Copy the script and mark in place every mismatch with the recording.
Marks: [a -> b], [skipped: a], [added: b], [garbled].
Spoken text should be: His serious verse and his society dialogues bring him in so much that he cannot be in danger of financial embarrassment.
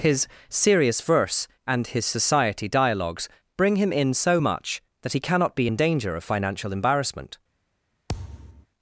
His serious verse and his society dialogues bring him in so much that he cannot be in danger of financial embarrassment.